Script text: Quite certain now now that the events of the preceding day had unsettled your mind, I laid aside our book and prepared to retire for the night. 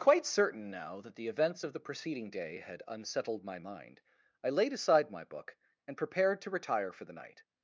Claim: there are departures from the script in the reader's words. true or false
true